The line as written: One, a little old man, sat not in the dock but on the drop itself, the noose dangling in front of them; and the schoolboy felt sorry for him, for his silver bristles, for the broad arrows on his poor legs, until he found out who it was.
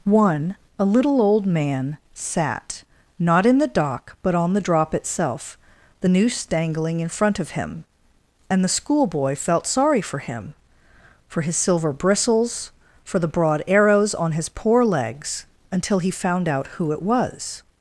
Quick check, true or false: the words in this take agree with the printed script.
false